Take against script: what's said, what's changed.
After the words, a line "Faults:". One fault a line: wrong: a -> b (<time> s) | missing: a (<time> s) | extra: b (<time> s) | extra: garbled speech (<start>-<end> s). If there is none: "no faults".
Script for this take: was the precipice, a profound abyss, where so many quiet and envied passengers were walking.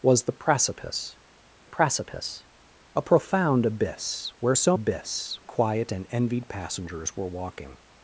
was the precipice precipice, a profound abyss, where so abyss quiet and envied passengers were walking.
Faults:
extra: precipice (1.6 s)
wrong: many -> abyss (4.7 s)